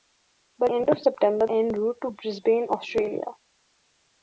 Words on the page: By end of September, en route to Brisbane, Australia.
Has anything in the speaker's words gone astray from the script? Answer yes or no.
no